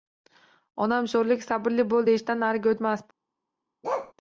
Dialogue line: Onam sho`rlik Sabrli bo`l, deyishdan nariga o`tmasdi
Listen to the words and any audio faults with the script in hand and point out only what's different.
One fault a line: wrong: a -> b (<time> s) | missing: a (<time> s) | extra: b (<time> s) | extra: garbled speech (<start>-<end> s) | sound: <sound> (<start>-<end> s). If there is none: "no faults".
sound: bark (3.8-4.1 s)